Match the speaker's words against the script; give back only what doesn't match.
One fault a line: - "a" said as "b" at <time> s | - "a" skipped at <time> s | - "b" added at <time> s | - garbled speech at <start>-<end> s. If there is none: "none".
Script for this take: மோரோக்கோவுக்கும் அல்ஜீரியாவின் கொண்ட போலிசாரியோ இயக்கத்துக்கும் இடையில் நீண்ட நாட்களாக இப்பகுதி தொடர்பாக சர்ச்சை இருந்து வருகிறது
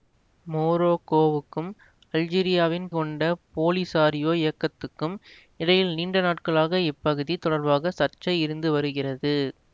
none